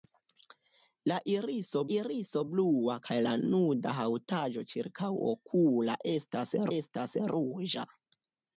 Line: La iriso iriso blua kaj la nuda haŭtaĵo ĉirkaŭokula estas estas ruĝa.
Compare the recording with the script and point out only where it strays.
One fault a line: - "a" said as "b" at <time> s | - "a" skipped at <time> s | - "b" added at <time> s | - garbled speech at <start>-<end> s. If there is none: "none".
none